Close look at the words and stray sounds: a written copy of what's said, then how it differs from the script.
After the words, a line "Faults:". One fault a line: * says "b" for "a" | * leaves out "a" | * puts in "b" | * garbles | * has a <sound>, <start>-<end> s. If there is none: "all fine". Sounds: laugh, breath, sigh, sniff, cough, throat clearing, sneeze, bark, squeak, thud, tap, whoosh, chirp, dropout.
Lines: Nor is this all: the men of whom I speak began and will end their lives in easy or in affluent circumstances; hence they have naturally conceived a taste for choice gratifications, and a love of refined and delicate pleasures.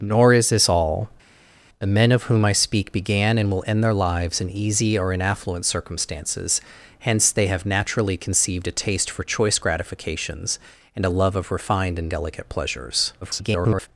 Nor is this all: the men of whom I speak began and will end their lives in easy or in affluent circumstances; hence they have naturally conceived a taste for choice gratifications, and a love of refined and delicate pleasures. [garbled]
Faults:
* garbles